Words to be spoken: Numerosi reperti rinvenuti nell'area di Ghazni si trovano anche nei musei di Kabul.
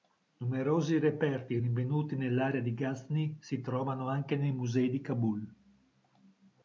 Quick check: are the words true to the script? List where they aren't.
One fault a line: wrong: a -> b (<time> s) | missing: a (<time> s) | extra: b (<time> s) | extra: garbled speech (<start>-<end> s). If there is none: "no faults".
no faults